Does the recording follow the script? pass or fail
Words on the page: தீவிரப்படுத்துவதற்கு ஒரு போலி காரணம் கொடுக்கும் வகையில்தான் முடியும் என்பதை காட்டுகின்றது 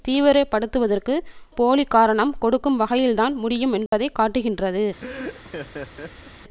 fail